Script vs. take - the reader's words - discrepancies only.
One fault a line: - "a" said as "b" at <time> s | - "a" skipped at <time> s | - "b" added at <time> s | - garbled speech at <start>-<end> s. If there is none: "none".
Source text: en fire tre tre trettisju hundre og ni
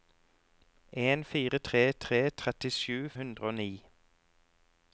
none